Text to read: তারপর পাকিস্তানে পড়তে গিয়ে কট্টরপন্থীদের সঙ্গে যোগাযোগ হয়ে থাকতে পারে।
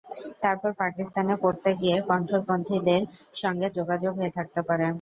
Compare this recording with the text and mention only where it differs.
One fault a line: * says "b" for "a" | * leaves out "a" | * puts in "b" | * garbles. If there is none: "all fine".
all fine